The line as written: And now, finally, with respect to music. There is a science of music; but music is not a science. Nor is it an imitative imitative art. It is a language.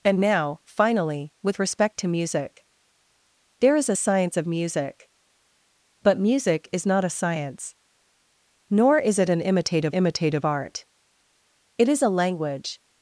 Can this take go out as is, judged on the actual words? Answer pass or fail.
pass